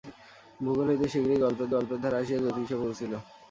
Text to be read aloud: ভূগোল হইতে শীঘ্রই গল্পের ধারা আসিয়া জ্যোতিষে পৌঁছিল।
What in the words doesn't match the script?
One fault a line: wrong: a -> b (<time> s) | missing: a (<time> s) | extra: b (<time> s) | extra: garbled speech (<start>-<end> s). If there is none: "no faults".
extra: গল্পের (1.7 s)